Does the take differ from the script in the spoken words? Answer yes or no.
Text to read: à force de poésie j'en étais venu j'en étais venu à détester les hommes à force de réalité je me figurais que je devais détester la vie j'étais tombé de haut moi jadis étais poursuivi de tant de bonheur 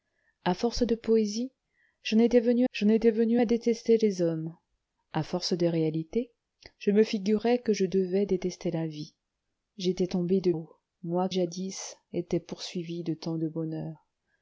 no